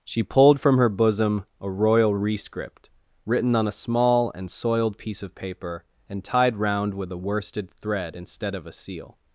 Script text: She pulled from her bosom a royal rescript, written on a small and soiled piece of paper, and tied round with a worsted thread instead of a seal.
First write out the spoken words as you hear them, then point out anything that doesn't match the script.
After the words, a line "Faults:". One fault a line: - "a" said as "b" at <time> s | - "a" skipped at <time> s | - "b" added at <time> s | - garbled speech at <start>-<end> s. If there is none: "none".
She pulled from her bosom a royal rescript, written on a small and soiled piece of paper, and tied round with a worsted thread instead of a seal.
Faults:
none